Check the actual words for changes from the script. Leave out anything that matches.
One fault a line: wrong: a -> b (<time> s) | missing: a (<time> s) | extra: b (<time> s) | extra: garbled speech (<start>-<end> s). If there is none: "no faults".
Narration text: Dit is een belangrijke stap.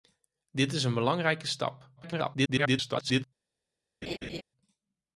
extra: garbled speech (2.0-3.2 s)